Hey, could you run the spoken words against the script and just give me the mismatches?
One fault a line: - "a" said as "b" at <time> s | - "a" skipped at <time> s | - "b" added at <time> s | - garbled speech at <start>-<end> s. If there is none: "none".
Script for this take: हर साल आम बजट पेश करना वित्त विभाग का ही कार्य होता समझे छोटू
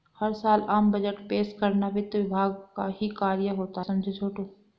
none